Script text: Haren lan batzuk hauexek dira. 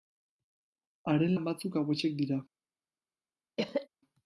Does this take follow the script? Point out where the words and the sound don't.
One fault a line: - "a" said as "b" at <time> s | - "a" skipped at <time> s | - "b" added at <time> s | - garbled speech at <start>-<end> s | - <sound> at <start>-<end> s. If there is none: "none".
- cough at 3.6-3.9 s